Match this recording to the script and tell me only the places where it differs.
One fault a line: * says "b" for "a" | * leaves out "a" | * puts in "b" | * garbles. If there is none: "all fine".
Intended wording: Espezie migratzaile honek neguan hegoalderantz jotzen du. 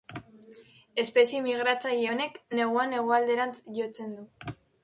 all fine